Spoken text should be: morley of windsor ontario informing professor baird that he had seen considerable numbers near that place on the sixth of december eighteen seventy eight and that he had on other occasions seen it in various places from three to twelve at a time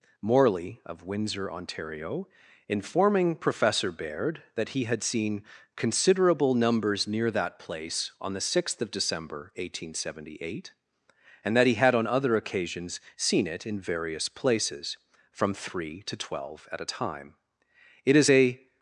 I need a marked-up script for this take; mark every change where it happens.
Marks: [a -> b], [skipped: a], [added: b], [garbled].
morley of windsor ontario informing professor baird that he had seen considerable numbers near that place on the sixth of december eighteen seventy eight and that he had on other occasions seen it in various places from three to twelve at a time [added: it is a]